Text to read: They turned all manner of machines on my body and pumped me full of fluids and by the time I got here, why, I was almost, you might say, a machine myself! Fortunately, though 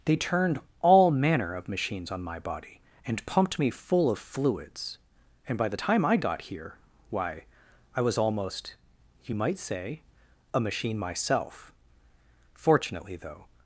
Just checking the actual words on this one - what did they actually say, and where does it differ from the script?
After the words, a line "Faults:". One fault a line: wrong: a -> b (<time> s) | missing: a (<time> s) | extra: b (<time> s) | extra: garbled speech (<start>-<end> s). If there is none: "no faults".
They turned all manner of machines on my body and pumped me full of fluids and by the time I got here, why, I was almost, you might say, a machine myself! Fortunately, though
Faults:
no faults